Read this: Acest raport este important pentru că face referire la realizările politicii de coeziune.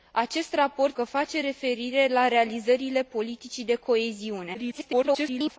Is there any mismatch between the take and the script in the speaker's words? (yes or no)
yes